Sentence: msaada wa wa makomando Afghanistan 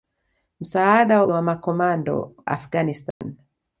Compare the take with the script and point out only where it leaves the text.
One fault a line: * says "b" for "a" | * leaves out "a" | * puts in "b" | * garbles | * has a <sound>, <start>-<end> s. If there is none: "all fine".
* has a dropout, 3.1-3.2 s